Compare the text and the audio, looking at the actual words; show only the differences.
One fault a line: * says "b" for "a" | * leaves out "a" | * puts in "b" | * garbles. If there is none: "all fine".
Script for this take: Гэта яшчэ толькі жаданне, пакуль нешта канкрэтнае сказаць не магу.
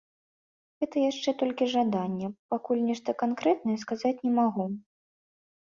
all fine